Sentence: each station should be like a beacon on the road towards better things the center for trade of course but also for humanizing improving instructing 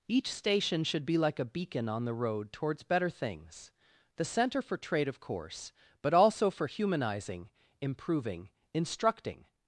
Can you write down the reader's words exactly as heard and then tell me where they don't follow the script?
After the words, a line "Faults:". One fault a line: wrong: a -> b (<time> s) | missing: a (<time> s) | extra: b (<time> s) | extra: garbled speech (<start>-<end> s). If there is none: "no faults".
each station should be like a beacon on the road towards better things the center for trade of course but also for humanizing improving instructing
Faults:
no faults